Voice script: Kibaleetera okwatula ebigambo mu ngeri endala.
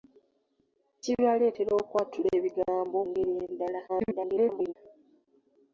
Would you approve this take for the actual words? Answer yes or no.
no